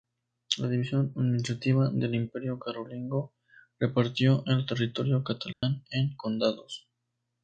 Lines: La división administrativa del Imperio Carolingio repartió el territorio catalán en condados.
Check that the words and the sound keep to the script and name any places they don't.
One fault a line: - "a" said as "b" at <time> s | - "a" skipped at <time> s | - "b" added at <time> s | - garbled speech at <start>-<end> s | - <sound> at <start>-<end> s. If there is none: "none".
- dropout at 5.5-5.6 s